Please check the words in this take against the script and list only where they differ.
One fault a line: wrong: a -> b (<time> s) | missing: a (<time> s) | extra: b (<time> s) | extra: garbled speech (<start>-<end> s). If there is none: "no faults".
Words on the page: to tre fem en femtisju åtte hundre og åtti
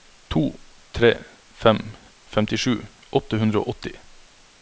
missing: en (1.8 s)